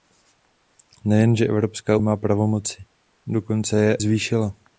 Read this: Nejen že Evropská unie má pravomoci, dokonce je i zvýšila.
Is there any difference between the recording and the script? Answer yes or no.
yes